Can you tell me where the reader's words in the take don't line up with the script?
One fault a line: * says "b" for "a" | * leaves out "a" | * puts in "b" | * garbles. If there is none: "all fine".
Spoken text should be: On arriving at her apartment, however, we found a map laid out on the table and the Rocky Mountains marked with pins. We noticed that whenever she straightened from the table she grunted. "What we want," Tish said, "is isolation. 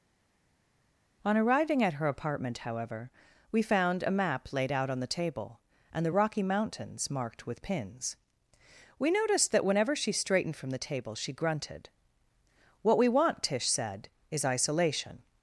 all fine